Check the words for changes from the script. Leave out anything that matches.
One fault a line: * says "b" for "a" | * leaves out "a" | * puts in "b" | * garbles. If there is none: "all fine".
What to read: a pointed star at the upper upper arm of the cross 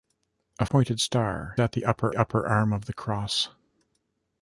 all fine